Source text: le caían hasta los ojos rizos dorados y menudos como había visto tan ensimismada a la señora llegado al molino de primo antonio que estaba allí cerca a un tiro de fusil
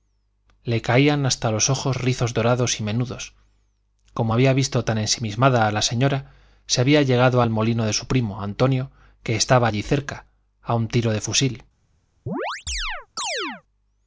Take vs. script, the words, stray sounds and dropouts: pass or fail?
fail